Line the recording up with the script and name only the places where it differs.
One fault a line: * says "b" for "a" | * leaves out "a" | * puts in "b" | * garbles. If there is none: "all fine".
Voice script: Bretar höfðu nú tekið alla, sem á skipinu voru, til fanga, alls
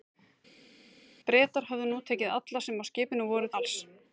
* leaves out "til fanga"